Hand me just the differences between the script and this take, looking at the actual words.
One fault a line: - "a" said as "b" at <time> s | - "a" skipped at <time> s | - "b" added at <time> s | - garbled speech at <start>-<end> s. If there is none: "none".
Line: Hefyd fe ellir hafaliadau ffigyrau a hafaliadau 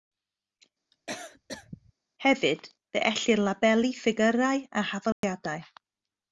- "hafaliadau" said as "labelu" at 3.5 s